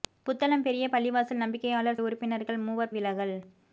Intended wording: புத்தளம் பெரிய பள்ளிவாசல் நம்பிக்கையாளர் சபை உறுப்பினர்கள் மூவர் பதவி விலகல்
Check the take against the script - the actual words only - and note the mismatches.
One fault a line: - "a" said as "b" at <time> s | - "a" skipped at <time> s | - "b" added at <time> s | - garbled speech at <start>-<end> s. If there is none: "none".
- "சபை" skipped at 2.0 s
- "பதவி" skipped at 2.9 s